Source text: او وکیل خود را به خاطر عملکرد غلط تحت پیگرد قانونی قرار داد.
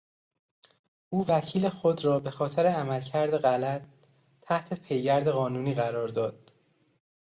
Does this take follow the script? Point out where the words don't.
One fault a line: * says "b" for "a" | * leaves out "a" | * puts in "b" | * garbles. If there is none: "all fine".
all fine